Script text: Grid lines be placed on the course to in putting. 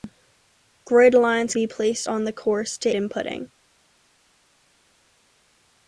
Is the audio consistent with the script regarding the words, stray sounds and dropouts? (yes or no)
yes